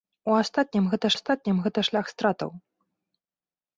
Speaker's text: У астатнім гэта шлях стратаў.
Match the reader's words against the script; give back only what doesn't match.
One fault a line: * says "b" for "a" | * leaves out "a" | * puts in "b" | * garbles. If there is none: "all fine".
* puts in "астатнім гэта"